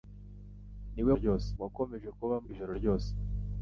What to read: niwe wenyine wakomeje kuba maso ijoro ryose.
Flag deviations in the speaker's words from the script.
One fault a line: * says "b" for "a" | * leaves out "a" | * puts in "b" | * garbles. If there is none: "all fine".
* says "ryose" for "wenyine"
* leaves out "maso"